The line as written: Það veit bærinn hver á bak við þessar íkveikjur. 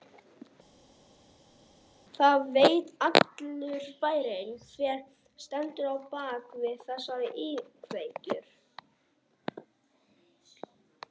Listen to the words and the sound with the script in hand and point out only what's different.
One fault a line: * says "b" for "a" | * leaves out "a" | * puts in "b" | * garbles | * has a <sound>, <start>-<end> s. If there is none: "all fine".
* puts in "allur"
* puts in "stendur"